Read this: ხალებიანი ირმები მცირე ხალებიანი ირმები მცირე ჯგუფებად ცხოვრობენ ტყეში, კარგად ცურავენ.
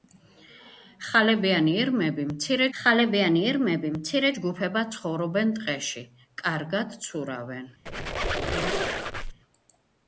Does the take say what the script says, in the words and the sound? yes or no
no